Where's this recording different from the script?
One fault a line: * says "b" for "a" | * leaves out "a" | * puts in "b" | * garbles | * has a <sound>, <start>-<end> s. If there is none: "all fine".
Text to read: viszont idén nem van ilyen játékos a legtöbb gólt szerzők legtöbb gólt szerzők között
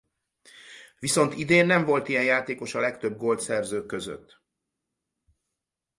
* says "volt" for "van"
* leaves out "legtöbb gólt szerzők"